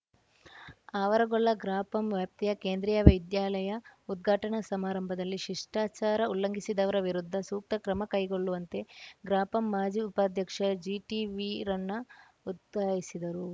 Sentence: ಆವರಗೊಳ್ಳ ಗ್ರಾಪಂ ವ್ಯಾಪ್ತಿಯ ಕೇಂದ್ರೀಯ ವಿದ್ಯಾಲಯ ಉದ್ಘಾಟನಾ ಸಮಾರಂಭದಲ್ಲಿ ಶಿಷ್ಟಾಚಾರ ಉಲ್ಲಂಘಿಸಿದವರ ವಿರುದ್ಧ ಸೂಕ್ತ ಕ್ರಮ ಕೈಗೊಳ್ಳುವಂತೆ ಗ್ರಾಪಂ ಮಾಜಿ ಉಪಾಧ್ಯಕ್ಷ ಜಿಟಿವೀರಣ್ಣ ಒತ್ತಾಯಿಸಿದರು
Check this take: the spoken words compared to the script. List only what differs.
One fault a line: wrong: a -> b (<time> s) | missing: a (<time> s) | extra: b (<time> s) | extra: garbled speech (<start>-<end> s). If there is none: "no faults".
no faults